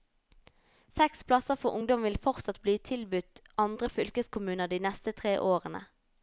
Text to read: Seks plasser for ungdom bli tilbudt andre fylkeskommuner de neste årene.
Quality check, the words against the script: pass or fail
fail